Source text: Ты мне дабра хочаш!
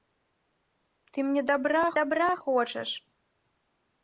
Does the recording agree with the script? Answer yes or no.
no